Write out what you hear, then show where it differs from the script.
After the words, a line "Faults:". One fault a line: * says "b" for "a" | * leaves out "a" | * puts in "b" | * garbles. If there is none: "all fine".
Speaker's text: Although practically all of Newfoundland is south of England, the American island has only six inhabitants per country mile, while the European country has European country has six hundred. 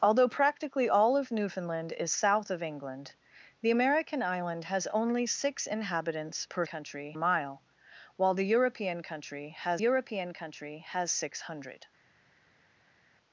Although practically all of Newfoundland is south of England, the American island has only six inhabitants per country mile, while the European country has European country has six hundred.
Faults:
all fine